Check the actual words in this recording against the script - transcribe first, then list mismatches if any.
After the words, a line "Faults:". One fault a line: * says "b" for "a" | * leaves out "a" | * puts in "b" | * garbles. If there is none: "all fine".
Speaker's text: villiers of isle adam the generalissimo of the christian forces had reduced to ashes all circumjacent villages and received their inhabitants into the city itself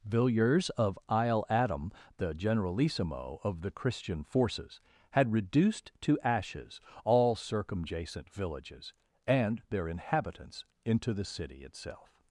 villiers of isle adam the generalissimo of the christian forces had reduced to ashes all circumjacent villages and their inhabitants into the city itself
Faults:
* leaves out "received"